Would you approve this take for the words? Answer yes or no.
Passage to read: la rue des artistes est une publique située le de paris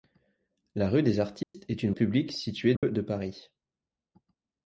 yes